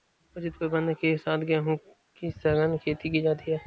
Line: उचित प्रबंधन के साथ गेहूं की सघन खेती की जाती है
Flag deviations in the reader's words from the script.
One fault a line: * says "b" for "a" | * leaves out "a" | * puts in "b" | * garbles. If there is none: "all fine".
all fine